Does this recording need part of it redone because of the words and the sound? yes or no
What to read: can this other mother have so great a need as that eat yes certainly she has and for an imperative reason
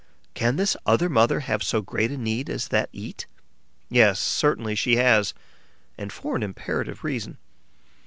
no